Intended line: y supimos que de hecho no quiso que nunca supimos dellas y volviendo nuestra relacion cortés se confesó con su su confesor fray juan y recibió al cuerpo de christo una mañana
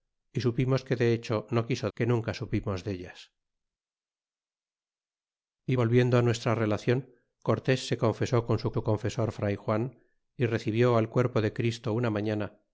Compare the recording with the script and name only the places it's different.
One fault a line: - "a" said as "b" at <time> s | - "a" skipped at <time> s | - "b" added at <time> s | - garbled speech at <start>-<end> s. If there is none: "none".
none